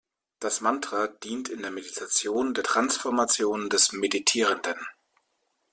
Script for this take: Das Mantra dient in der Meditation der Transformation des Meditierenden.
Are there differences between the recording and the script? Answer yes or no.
no